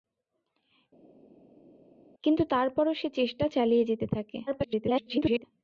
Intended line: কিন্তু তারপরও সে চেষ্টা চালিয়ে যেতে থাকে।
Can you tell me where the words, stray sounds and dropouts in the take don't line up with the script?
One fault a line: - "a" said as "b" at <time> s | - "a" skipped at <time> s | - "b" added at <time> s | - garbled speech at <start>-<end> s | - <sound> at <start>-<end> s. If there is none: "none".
- garbled speech at 4.5-5.4 s